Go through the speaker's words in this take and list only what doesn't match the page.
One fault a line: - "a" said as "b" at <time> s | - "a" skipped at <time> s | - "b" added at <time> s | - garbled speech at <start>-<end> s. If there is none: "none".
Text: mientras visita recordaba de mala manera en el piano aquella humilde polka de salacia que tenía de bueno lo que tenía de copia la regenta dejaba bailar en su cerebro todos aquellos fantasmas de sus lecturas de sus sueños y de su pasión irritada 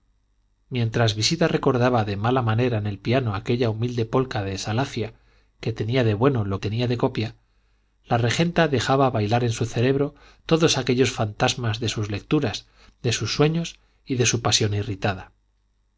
- "que" skipped at 6.6 s